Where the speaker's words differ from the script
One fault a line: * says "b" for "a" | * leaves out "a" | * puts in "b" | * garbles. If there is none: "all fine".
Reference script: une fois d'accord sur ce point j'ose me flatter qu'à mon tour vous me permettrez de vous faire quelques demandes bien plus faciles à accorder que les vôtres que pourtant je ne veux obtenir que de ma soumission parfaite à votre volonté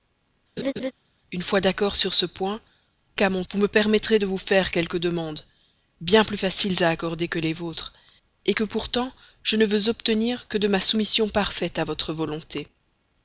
* leaves out "j'ose me flatter"
* leaves out "tour"